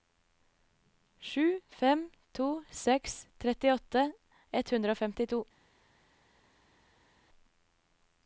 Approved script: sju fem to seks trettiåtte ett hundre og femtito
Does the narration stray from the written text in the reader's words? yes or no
no